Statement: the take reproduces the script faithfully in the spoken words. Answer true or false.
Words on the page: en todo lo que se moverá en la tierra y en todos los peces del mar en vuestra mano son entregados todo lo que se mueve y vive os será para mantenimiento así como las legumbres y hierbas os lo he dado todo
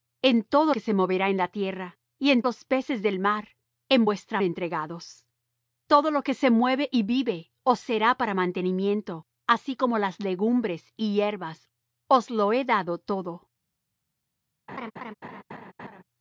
false